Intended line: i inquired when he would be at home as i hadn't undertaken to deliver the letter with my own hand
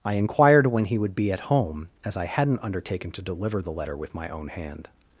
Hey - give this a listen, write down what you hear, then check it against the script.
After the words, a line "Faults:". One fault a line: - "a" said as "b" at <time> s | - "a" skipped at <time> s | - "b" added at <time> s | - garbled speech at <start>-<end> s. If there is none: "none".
i inquired when he would be at home as i hadn't undertaken to deliver the letter with my own hand
Faults:
none